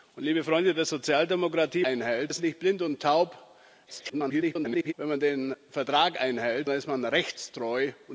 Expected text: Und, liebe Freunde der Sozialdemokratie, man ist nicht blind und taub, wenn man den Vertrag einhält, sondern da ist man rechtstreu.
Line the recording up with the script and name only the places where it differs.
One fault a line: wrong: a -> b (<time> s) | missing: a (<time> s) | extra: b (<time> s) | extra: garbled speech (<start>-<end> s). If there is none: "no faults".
wrong: man -> einhält (1.8 s)
extra: garbled speech (3.9-4.9 s)
missing: sondern (6.7 s)